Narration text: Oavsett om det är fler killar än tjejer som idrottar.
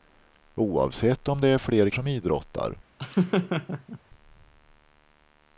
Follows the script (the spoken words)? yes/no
no